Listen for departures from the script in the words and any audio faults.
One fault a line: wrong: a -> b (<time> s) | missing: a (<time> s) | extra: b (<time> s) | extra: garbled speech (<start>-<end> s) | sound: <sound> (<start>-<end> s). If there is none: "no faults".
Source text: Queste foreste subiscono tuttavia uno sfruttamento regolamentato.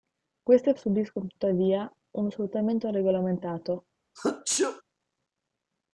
missing: foreste (0.7 s)
sound: sneeze (4.2-4.8 s)